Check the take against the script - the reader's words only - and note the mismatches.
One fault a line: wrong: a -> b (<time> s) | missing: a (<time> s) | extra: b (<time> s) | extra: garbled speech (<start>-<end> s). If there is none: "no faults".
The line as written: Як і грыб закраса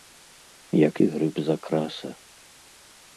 no faults